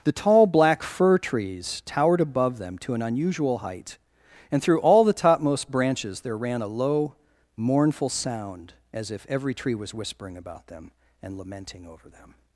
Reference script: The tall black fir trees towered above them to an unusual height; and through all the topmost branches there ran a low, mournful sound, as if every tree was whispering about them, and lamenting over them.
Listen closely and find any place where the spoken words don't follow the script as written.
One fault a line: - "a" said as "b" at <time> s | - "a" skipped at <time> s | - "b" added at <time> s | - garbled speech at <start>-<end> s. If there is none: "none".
none